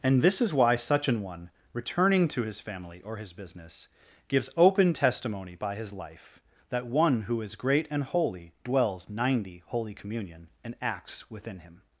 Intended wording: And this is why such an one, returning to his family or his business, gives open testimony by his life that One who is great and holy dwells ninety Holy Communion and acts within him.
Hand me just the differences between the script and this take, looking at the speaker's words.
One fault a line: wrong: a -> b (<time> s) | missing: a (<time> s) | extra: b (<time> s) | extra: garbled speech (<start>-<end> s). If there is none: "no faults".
no faults